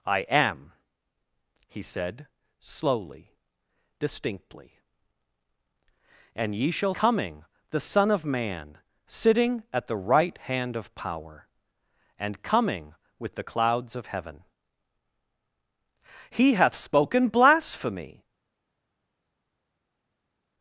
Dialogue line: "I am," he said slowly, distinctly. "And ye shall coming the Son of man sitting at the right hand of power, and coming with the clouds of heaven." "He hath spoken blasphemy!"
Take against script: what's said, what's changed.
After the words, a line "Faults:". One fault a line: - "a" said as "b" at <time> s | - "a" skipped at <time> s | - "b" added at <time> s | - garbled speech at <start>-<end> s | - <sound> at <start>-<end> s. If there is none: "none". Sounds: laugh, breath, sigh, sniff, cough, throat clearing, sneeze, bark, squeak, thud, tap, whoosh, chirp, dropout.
"I am," he said slowly, distinctly. "And ye shall coming the Son of man sitting at the right hand of power, and coming with the clouds of heaven." "He hath spoken blasphemy!"
Faults:
none